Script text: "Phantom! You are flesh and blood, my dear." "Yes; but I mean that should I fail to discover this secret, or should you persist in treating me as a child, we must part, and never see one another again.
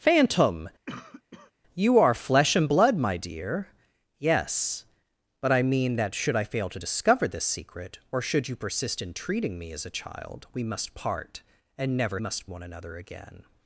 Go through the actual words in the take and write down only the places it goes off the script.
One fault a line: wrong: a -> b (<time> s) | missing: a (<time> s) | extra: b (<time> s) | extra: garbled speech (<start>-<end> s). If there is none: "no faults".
wrong: see -> must (12.2 s)